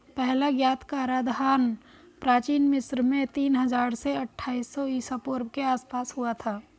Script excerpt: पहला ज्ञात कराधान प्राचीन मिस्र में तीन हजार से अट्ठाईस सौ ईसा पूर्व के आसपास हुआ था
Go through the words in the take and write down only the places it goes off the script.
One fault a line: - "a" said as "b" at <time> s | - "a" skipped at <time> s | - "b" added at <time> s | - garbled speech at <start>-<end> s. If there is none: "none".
none